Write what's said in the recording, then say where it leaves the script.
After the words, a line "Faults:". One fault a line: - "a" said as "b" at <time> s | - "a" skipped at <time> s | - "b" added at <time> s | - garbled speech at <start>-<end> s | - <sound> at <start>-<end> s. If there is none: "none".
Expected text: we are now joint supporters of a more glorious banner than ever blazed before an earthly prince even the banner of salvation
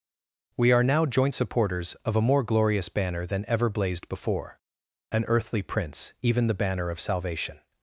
we are now joint supporters of a more glorious banner than ever blazed before an earthly prince even the banner of salvation
Faults:
none